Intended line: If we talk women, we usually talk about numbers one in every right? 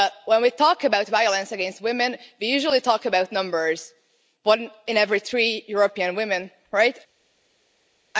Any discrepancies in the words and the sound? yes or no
yes